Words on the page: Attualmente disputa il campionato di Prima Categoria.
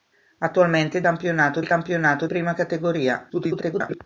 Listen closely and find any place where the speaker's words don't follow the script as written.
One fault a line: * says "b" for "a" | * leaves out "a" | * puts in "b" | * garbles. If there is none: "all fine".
* says "campionato" for "disputa"
* leaves out "di"
* garbles